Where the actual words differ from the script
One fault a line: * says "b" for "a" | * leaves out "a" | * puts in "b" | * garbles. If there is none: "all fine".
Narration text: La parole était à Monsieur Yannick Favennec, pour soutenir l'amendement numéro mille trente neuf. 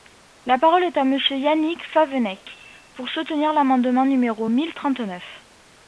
* says "est" for "était"